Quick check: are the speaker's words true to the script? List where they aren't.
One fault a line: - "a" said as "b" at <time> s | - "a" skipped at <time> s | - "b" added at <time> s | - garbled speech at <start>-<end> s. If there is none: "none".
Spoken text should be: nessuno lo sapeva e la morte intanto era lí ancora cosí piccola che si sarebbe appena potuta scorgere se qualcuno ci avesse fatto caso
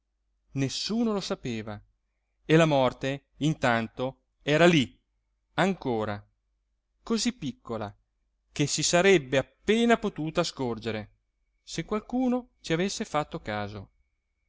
none